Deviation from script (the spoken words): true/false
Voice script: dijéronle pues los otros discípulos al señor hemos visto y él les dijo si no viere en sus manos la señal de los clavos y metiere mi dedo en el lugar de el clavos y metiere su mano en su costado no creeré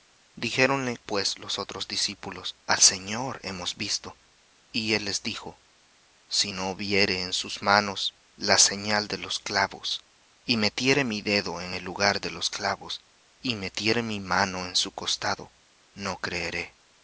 true